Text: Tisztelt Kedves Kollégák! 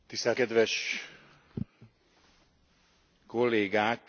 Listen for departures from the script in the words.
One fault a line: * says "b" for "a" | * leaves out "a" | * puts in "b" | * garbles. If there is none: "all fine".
all fine